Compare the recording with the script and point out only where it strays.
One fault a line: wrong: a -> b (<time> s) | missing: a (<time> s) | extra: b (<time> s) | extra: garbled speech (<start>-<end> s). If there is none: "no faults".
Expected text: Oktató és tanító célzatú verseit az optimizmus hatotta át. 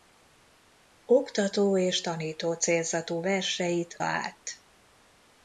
missing: az optimizmus hatotta (4.0 s)